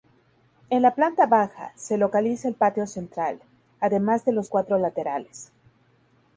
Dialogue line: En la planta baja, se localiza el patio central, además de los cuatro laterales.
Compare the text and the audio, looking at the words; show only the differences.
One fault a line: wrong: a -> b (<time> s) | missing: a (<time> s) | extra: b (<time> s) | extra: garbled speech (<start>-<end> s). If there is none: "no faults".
no faults